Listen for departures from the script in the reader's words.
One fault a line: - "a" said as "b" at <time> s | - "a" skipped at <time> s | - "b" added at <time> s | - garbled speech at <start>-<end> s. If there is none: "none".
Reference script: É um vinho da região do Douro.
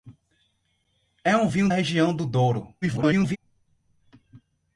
- "da" skipped at 1.7 s
- garbled speech at 2.8-3.4 s